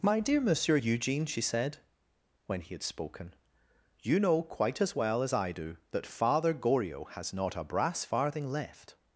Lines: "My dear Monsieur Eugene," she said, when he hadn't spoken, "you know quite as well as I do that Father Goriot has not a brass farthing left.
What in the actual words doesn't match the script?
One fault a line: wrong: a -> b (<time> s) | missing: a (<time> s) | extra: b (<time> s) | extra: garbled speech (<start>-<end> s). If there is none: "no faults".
wrong: hadn't -> had (2.7 s)